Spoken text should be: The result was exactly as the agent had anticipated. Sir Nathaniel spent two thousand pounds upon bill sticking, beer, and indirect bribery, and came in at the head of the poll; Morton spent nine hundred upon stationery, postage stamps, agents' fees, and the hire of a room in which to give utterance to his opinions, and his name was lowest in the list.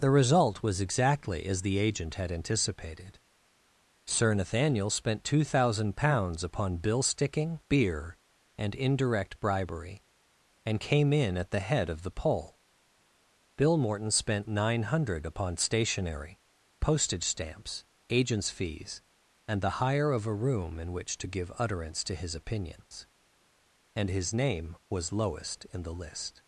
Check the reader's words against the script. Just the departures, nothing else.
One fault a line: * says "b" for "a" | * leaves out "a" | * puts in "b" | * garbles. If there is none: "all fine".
* puts in "bill"